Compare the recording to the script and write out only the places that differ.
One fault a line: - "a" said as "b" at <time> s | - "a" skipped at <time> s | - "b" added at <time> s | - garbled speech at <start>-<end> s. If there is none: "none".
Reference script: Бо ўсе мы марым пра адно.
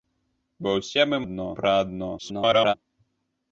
- "марым" said as "адно" at 1.2 s
- garbled speech at 2.2-2.7 s